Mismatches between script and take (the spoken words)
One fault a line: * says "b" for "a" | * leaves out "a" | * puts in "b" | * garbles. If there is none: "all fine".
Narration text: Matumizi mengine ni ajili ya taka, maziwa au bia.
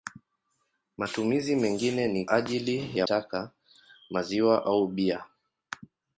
all fine